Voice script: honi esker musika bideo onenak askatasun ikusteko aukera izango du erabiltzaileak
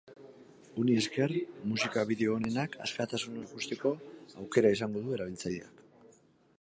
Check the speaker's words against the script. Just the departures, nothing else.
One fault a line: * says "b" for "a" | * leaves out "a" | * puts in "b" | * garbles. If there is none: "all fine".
all fine